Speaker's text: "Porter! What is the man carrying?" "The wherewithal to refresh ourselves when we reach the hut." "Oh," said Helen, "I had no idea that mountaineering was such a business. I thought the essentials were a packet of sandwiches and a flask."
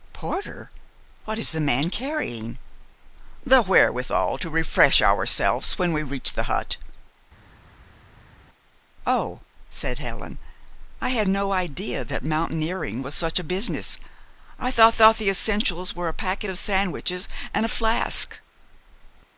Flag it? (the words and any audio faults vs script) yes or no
yes